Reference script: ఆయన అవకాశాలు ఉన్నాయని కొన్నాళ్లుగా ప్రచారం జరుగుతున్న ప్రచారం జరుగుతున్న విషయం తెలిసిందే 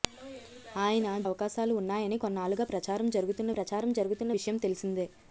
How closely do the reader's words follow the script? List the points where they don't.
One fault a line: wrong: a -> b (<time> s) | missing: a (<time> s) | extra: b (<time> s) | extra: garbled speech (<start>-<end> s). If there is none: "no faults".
no faults